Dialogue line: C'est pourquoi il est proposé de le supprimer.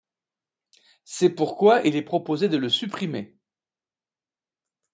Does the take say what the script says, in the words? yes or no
yes